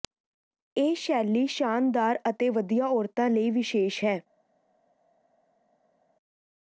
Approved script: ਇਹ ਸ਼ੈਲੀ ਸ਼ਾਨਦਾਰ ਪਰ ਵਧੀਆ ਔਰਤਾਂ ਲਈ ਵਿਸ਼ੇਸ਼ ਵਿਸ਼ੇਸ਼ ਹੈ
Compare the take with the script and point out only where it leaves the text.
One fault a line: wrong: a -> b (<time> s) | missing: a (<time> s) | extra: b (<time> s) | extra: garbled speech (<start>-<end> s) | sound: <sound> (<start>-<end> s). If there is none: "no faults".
wrong: ਪਰ -> ਅਤੇ (2.3 s)
missing: ਵਿਸ਼ੇਸ਼ (4.0 s)